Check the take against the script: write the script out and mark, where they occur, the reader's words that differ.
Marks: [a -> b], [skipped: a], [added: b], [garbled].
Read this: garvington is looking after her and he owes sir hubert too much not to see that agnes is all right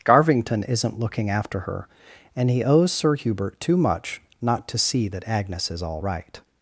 garvington [is -> isn't] looking after her and he owes sir hubert too much not to see that agnes is all right